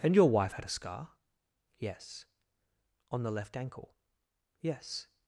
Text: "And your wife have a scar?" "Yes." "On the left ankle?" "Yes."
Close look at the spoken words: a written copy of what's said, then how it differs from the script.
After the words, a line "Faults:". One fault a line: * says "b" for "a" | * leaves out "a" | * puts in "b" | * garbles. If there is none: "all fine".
"And your wife had a scar?" "Yes." "On the left ankle?" "Yes."
Faults:
* says "had" for "have"